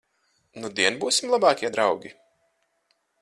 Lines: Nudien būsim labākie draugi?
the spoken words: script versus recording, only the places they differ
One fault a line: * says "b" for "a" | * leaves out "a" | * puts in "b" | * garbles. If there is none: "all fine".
all fine